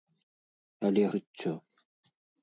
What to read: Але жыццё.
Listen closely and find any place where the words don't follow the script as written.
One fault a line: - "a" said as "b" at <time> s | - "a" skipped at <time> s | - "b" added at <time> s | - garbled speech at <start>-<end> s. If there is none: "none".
none